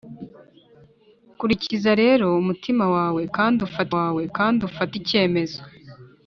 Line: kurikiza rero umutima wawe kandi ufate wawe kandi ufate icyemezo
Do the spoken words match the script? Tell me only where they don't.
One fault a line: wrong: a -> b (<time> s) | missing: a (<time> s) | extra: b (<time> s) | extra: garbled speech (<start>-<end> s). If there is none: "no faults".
no faults